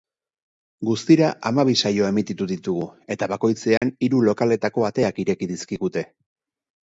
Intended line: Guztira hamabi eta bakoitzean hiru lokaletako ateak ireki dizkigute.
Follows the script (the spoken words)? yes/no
no